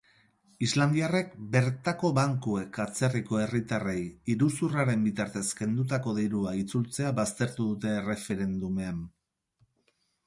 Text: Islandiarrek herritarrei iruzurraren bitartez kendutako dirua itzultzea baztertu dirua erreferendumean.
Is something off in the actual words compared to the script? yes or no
yes